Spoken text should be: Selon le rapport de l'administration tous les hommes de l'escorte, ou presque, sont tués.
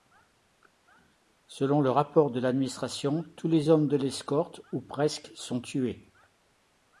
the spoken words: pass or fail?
pass